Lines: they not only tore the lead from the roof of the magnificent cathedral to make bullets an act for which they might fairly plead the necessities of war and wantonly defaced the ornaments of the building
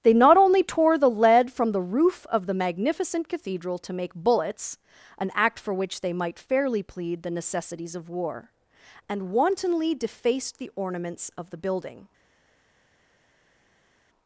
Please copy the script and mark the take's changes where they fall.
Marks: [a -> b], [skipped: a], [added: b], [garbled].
they not only tore the lead from the roof of the magnificent cathedral to make bullets an act for which they might fairly plead the necessities of war and wantonly defaced the ornaments of the building